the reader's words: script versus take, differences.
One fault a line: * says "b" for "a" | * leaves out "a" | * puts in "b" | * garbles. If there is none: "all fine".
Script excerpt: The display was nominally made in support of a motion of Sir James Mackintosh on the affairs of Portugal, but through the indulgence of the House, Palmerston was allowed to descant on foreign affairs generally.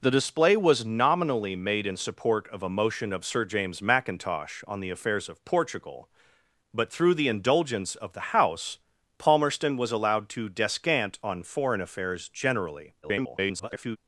* garbles